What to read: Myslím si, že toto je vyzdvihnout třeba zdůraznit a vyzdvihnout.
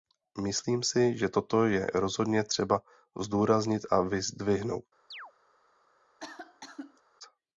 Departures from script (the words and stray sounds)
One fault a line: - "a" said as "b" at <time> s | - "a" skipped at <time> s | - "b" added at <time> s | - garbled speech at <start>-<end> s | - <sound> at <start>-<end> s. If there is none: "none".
- "vyzdvihnout" said as "rozhodně" at 1.9 s
- chirp at 5.1-5.3 s
- cough at 6.2-7.0 s